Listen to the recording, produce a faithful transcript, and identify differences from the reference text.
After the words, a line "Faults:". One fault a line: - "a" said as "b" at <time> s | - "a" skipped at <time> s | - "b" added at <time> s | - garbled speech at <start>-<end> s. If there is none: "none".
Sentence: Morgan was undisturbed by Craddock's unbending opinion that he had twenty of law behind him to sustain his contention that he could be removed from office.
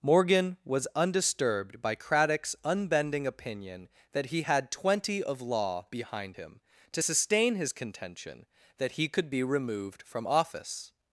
Morgan was undisturbed by Craddock's unbending opinion that he had twenty of law behind him to sustain his contention that he could be removed from office.
Faults:
none